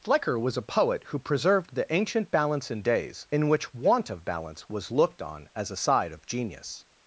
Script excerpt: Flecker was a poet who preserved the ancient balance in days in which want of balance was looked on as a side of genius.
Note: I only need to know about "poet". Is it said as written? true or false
true